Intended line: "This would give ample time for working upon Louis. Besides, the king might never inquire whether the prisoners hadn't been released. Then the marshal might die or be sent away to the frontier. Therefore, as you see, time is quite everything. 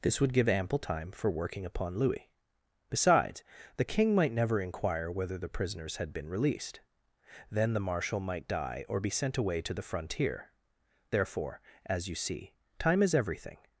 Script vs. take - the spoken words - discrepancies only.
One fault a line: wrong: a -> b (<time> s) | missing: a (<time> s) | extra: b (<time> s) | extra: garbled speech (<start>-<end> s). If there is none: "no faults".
wrong: hadn't -> had (6.0 s)
missing: quite (13.1 s)